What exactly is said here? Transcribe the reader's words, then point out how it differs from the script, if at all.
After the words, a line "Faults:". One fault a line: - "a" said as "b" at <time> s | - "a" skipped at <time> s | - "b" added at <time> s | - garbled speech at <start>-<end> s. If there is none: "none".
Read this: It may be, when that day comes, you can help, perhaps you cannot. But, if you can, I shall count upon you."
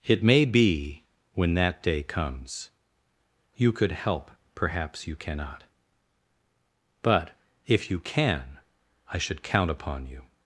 It may be, when that day comes, you could help, perhaps you cannot. But, if you can, I should count upon you."
Faults:
- "can" said as "could" at 3.7 s
- "shall" said as "should" at 9.2 s